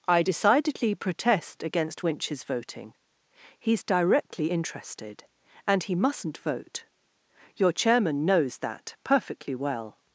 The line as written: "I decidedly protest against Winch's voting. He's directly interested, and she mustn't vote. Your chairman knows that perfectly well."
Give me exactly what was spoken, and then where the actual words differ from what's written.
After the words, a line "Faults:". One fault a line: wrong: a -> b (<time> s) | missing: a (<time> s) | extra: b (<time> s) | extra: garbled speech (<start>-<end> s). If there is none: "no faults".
"I decidedly protest against Winch's voting. He's directly interested, and he mustn't vote. Your chairman knows that perfectly well."
Faults:
wrong: she -> he (5.8 s)